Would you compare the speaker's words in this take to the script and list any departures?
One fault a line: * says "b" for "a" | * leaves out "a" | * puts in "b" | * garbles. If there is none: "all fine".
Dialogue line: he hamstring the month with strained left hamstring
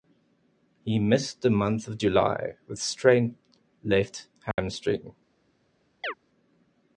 * says "missed" for "hamstring"
* puts in "of july"